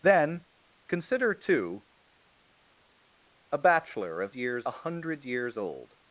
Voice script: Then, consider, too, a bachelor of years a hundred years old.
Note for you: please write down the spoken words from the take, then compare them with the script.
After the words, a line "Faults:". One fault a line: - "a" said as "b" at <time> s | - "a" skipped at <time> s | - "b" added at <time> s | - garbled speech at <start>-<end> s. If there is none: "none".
Then, consider, too, a bachelor of years a hundred years old.
Faults:
none